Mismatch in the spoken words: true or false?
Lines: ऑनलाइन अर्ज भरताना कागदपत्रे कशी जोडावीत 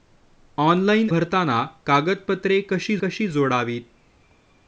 true